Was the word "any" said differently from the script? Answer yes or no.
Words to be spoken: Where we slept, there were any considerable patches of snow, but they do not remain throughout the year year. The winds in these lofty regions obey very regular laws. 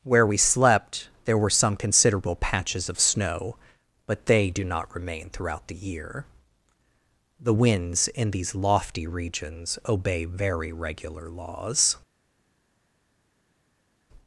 yes